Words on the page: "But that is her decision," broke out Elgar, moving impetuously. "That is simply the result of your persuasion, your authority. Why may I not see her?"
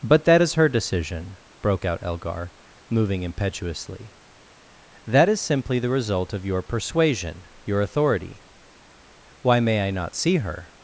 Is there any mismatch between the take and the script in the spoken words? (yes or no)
no